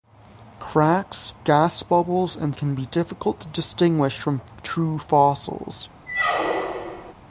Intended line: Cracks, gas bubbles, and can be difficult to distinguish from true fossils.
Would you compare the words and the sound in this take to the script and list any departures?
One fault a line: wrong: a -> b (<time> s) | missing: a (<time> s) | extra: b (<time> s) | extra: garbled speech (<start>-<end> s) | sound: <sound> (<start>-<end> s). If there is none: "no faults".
sound: squeak (6.1-7.1 s)